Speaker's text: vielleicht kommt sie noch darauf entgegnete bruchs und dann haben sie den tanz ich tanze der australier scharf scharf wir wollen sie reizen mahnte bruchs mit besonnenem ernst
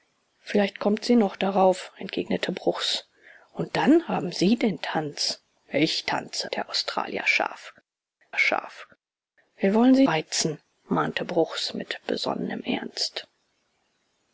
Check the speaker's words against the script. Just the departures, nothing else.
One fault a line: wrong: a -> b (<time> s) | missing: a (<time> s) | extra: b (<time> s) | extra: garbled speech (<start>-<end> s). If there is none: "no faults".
no faults